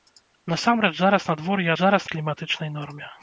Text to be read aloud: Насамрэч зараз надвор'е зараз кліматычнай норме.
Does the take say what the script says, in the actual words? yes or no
yes